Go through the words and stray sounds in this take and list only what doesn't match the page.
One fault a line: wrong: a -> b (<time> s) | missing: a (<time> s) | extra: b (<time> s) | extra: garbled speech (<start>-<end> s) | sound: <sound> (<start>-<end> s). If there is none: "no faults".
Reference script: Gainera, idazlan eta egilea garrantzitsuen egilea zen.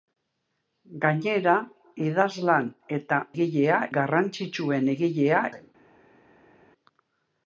no faults